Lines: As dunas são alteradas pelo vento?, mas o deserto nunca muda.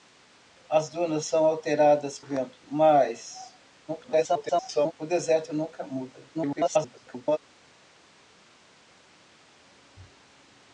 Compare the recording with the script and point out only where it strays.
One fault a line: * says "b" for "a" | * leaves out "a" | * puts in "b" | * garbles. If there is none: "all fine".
* leaves out "pelo"
* garbles
* garbles